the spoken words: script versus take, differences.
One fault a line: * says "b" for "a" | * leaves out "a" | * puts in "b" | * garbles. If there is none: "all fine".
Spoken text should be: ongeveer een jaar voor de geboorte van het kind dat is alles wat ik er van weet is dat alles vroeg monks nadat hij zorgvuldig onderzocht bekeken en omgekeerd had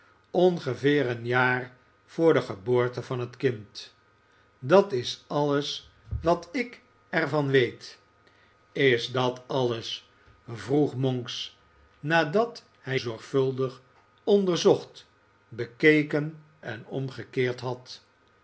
all fine